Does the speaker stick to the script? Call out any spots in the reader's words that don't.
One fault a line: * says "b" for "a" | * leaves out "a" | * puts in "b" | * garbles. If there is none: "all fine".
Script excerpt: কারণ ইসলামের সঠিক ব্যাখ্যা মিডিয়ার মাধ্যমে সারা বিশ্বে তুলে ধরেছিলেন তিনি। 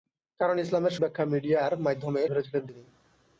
* leaves out "সঠিক"
* leaves out "সারা বিশ্বে তুলে"